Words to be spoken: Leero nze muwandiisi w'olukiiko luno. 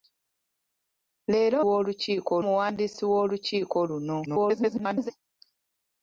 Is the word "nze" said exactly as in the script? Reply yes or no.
no